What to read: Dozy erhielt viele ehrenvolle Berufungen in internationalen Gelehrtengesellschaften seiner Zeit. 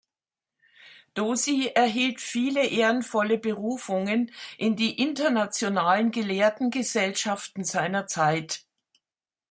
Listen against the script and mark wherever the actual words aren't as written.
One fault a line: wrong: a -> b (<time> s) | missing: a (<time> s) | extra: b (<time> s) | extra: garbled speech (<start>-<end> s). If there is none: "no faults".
extra: die (4.8 s)